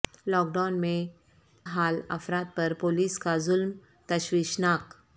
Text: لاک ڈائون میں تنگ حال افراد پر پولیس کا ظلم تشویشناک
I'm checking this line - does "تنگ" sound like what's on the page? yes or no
no